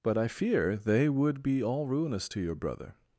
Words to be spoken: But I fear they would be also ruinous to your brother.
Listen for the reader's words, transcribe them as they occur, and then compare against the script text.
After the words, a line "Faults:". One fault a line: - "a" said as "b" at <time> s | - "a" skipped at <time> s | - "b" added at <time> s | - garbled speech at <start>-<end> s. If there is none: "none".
But I fear they would be all ruinous to your brother.
Faults:
- "also" said as "all" at 1.6 s